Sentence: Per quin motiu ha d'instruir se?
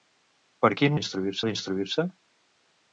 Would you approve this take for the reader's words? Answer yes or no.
no